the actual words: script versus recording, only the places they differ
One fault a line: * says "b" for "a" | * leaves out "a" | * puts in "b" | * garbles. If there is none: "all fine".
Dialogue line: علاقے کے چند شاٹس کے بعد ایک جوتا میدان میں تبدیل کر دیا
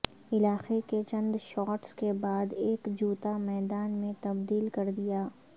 all fine